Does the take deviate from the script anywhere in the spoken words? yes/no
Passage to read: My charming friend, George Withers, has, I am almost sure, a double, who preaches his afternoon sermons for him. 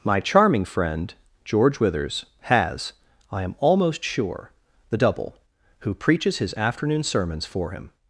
yes